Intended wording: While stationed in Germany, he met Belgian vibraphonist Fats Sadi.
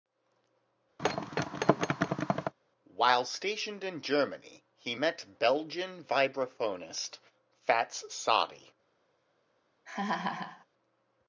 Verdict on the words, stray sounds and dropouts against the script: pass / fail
fail